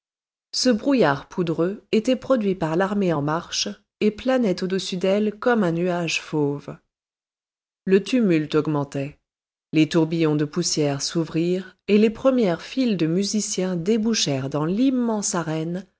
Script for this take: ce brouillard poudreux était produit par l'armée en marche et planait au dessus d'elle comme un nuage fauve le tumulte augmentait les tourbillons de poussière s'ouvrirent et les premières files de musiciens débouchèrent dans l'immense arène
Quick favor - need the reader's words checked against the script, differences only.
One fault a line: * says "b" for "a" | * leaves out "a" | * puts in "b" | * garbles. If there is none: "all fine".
all fine